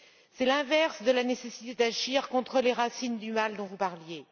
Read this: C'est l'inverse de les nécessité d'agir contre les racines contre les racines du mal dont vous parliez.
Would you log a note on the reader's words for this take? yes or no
yes